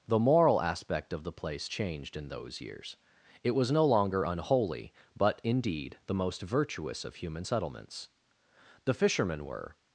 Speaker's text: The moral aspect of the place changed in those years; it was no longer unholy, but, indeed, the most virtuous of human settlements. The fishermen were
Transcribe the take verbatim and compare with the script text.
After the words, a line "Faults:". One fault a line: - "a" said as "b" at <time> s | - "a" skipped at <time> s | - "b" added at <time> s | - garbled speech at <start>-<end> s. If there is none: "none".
The moral aspect of the place changed in those years; it was no longer unholy, but, indeed, the most virtuous of human settlements. The fishermen were
Faults:
none